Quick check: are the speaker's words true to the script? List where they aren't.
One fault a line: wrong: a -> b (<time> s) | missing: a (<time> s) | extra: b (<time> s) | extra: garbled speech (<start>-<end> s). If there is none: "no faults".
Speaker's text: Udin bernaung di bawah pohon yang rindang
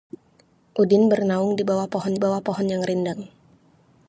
extra: bawah pohon (2.2 s)